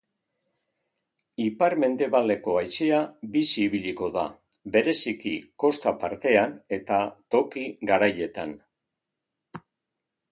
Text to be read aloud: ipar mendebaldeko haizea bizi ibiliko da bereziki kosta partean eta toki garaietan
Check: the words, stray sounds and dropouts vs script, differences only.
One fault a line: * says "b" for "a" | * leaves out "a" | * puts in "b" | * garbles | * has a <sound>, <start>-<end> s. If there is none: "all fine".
all fine